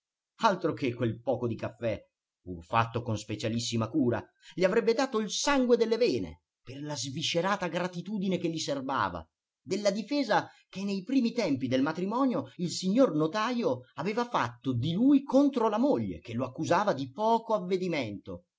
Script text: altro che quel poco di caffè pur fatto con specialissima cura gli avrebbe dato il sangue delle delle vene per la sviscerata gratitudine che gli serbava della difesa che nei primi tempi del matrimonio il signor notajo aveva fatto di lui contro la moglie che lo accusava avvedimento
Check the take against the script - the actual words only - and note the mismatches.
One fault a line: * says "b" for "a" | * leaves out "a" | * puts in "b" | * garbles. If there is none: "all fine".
* leaves out "delle"
* puts in "di poco"